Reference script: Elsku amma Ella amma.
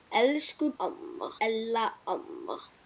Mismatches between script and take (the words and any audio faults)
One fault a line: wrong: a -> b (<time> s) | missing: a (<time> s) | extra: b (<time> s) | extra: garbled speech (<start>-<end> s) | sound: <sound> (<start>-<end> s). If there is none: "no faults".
no faults